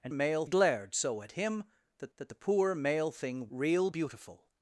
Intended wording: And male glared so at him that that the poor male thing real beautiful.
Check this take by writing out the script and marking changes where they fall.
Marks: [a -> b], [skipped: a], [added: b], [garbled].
And male glared so at him that that the poor male thing real beautiful.